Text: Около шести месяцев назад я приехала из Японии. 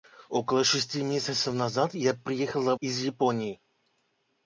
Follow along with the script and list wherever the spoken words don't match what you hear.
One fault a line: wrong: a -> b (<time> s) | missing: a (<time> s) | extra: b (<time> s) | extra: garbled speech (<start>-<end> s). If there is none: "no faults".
no faults